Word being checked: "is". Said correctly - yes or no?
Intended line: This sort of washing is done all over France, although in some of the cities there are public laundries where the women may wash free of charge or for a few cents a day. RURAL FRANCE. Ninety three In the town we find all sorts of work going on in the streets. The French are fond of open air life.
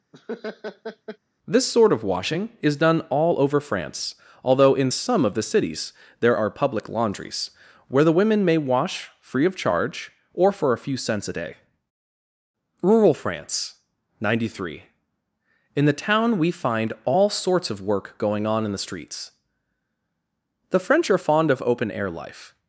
yes